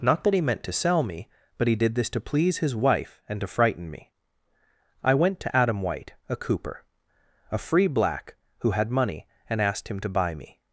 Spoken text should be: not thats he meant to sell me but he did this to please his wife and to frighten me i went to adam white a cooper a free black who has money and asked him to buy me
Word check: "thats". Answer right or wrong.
wrong